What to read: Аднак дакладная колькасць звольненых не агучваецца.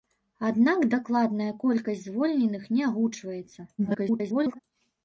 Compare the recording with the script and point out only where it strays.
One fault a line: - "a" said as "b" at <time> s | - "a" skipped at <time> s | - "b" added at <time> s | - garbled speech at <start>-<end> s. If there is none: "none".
- garbled speech at 3.8-4.6 s